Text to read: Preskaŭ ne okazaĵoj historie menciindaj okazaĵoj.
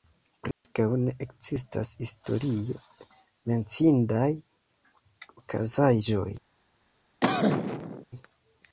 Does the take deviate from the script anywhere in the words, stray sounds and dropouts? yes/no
yes